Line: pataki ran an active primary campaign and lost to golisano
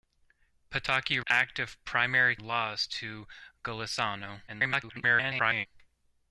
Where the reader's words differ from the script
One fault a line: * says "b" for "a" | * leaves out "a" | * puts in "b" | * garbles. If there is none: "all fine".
* leaves out "ran an"
* leaves out "campaign and"
* garbles